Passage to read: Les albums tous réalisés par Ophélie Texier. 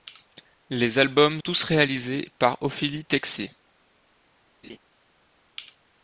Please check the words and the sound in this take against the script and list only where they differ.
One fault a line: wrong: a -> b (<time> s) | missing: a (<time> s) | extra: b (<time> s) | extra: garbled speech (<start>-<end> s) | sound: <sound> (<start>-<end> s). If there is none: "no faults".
sound: laugh (4.6-4.8 s)